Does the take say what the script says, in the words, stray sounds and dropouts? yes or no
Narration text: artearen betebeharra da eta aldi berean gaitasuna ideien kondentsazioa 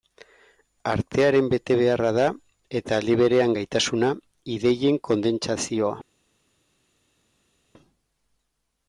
yes